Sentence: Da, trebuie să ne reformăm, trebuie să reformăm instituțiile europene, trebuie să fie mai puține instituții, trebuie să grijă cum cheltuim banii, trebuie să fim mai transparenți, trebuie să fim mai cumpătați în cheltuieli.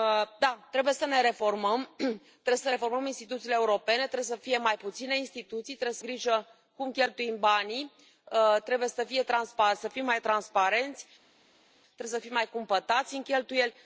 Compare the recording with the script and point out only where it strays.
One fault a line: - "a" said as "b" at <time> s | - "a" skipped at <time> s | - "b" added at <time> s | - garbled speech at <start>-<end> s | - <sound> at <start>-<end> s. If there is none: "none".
none